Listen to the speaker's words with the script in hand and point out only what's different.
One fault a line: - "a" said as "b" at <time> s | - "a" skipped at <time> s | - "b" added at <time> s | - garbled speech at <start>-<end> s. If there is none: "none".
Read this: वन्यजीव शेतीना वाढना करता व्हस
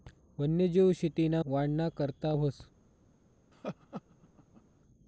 none